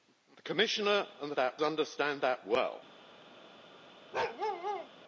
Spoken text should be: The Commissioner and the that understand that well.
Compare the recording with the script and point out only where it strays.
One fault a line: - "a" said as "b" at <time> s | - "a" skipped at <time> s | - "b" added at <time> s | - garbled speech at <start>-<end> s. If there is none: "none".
none